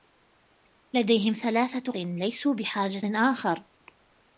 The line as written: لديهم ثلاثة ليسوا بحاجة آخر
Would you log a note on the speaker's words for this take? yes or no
no